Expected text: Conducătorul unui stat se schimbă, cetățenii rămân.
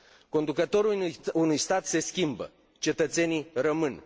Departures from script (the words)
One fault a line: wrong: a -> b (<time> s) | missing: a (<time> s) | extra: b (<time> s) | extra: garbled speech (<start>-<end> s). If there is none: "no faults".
no faults